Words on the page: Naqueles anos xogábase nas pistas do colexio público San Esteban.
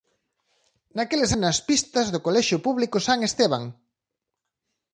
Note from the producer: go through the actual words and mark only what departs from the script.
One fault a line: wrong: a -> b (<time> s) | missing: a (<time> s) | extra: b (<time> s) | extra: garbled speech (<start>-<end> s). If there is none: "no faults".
missing: anos xogábase (1.3 s)